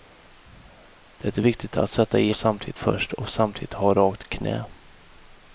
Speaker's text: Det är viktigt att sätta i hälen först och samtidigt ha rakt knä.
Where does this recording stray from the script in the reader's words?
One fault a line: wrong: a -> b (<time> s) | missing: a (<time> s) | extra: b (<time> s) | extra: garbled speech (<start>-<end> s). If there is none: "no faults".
wrong: hälen -> samtidigt (2.3 s)